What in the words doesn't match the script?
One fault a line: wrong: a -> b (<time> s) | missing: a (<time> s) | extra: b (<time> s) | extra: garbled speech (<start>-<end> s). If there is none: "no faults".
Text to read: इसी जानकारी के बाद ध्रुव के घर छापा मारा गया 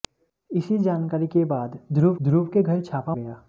extra: ध्रुव (2.2 s)
missing: मारा (3.2 s)